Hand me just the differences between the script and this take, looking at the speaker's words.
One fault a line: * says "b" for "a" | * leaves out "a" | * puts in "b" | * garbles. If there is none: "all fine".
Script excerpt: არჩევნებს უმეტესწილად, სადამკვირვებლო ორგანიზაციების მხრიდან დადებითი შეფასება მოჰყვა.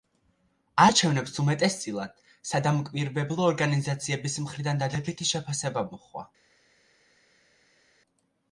all fine